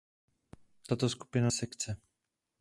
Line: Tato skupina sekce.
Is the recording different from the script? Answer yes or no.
no